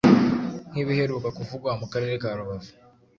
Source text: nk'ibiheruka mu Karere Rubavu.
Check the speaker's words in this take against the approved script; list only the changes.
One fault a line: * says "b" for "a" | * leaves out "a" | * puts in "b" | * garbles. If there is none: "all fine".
* puts in "kuvugwa"
* puts in "ka"